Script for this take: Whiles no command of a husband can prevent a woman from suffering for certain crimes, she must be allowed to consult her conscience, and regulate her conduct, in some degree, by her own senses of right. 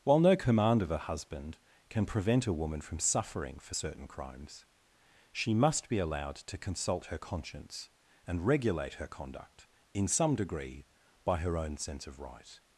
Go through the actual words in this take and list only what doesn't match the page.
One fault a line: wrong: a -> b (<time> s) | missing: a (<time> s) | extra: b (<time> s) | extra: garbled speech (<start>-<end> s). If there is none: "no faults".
wrong: Whiles -> While (0.0 s)
wrong: senses -> sense (11.8 s)